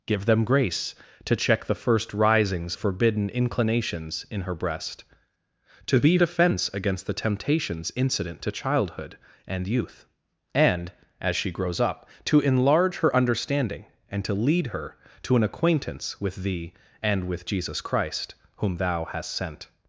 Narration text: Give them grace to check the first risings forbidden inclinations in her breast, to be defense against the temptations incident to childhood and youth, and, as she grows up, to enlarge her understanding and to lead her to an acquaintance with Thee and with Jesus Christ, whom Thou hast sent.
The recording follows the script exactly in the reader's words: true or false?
true